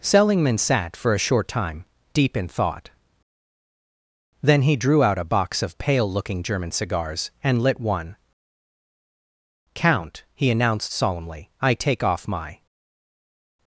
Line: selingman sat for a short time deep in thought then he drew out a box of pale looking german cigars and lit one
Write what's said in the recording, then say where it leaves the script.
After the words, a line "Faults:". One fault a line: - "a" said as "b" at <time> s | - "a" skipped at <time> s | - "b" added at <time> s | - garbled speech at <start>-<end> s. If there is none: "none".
selingman sat for a short time deep in thought then he drew out a box of pale looking german cigars and lit one count he announced solemnly i take off my
Faults:
- "count he announced solemnly i take off my" added at 9.7 s